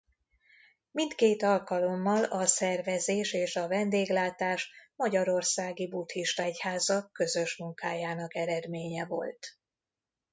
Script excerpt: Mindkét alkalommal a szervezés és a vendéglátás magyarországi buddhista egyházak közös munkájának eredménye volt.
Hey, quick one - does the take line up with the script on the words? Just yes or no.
yes